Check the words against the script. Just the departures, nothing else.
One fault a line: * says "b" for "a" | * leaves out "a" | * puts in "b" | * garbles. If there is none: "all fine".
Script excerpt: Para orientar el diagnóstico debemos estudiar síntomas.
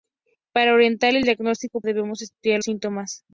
all fine